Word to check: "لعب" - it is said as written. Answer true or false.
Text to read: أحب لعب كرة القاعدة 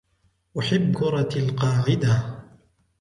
false